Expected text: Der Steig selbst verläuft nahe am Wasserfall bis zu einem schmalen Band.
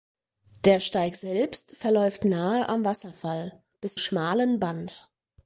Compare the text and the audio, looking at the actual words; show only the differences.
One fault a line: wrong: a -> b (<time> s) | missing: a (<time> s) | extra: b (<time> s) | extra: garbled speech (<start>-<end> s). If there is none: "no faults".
missing: zu einem (4.0 s)